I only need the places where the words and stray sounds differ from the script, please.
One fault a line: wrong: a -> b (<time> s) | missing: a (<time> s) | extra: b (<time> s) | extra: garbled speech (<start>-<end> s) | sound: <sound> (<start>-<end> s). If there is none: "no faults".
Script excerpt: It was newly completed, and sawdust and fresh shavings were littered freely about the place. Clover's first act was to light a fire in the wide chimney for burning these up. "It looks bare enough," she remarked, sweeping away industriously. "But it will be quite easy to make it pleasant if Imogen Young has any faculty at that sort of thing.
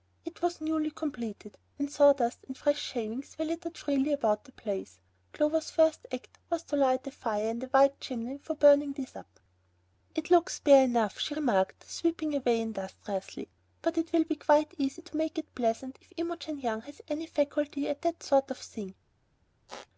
sound: squeak (19.7-19.9 s)